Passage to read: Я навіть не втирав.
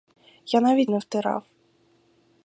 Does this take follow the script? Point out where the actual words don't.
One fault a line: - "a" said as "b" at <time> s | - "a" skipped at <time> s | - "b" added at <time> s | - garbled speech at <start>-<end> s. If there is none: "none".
none